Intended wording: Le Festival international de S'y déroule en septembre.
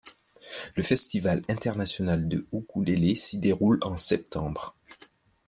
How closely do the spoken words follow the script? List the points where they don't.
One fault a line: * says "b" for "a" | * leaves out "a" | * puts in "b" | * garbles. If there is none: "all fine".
* puts in "Ukulélé"